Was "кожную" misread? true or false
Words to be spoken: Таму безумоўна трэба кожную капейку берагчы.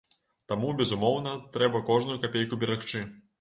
false